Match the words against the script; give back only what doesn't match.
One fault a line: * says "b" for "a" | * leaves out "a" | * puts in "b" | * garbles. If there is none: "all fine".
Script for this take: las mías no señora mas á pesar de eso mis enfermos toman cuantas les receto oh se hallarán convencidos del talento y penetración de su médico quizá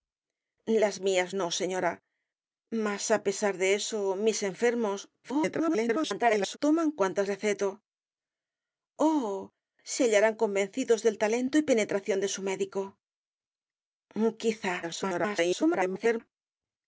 * garbles
* leaves out "les"
* garbles